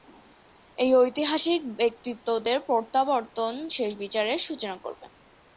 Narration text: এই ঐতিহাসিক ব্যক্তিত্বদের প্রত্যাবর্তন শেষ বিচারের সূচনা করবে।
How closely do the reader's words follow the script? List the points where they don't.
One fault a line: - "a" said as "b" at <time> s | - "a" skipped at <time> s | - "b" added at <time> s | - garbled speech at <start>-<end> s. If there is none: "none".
none